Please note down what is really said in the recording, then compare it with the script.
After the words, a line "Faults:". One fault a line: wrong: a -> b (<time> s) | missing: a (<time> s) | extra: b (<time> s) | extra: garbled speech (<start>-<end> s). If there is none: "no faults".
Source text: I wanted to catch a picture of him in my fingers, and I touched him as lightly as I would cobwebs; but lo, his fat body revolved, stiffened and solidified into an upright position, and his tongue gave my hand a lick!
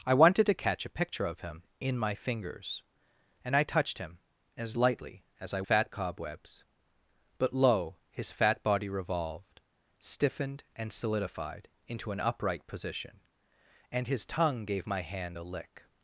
I wanted to catch a picture of him in my fingers, and I touched him as lightly as I fat cobwebs; but lo, his fat body revolved, stiffened and solidified into an upright position, and his tongue gave my hand a lick!
Faults:
wrong: would -> fat (5.6 s)